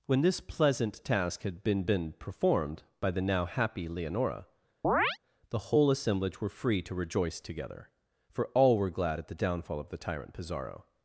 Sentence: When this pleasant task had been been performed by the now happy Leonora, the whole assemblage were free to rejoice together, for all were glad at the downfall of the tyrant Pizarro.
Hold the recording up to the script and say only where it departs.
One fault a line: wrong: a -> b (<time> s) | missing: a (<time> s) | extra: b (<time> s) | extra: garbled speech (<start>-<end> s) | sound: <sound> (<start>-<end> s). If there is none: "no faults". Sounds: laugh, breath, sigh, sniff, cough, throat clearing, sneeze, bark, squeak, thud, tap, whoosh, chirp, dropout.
sound: chirp (4.8-5.2 s)